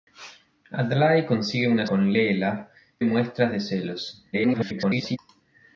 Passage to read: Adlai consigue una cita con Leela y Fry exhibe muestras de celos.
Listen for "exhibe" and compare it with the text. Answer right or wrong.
wrong